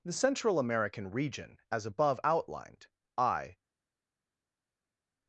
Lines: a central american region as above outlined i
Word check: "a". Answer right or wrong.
wrong